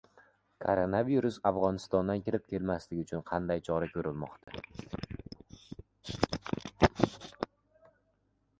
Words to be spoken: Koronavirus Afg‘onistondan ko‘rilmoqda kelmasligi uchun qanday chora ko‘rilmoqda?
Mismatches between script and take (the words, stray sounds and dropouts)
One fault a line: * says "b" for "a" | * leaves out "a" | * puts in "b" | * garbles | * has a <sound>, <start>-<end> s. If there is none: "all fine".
* says "kirib" for "ko‘rilmoqda"
* has a dropout, 4.4-4.5 s